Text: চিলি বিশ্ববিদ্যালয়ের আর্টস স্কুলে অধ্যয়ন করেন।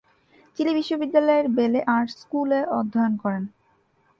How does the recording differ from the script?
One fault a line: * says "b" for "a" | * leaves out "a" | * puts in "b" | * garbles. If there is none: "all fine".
* puts in "বেলে"